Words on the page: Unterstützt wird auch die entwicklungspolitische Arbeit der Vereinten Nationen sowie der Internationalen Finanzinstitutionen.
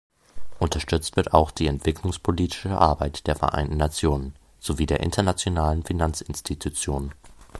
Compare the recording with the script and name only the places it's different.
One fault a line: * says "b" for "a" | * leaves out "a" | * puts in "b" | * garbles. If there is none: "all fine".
all fine